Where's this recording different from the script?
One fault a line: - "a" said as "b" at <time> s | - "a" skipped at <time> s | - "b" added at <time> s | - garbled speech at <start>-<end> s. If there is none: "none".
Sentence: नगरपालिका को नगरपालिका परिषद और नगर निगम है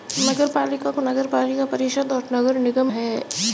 none